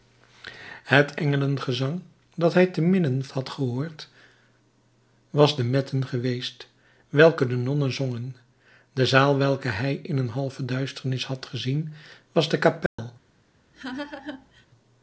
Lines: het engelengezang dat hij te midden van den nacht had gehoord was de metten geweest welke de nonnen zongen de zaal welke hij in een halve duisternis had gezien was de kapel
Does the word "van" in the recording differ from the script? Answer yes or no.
yes